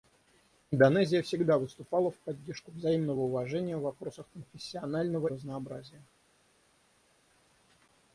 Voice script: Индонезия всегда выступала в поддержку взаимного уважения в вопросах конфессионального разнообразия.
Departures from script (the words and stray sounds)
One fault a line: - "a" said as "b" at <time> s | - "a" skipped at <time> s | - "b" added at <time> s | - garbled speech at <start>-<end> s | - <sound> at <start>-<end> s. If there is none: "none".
none